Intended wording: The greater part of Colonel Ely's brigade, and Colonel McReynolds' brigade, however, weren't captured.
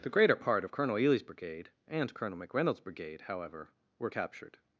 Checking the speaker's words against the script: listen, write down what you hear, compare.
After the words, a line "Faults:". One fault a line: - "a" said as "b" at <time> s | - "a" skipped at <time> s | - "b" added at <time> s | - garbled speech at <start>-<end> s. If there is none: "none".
The greater part of Colonel Ely's brigade, and Colonel McReynolds' brigade, however, were captured.
Faults:
- "weren't" said as "were" at 4.0 s